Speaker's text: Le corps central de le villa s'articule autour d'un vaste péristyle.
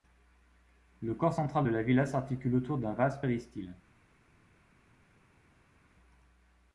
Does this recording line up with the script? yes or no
no